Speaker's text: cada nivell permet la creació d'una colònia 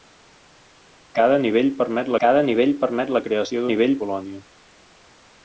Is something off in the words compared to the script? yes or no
yes